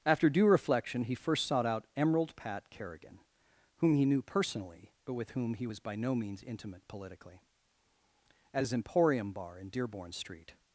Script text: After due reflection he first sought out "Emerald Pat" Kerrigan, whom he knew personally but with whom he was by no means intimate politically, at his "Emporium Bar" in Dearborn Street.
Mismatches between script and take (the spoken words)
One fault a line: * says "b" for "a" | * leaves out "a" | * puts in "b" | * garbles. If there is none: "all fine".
all fine